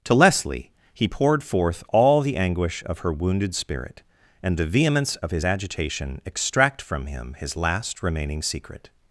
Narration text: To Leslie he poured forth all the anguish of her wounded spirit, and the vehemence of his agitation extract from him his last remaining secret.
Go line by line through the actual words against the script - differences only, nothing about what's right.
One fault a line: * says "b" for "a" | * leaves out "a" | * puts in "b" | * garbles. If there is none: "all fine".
all fine